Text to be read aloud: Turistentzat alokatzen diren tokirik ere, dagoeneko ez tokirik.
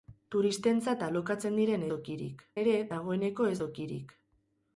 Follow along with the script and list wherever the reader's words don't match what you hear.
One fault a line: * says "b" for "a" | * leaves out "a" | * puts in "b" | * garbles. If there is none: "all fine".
all fine